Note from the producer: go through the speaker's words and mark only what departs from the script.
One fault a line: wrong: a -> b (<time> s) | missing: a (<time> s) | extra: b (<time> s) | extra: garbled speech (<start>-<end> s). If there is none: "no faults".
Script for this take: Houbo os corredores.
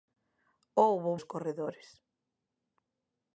no faults